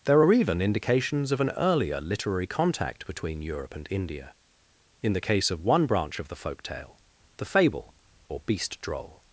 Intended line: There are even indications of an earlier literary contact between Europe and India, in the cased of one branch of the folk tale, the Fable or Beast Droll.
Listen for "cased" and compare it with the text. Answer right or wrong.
wrong